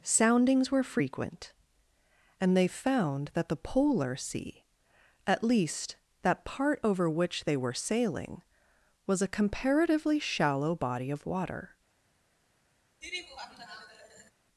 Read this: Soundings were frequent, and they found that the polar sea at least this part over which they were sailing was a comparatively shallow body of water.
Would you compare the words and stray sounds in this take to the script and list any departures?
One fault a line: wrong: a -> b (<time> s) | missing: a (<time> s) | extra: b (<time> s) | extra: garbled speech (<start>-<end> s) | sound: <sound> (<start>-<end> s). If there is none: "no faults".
wrong: this -> that (6.2 s)
sound: laugh (13.0-14.3 s)